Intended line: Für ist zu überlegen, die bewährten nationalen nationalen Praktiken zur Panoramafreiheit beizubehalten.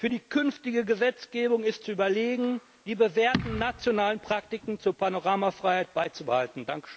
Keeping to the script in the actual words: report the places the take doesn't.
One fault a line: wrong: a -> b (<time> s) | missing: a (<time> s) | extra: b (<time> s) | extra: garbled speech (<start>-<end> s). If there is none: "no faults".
extra: die künftige Gesetzgebung (0.1 s)
missing: nationalen (4.2 s)